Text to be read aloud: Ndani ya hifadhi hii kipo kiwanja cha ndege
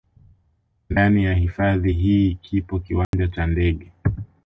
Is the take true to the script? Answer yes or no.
yes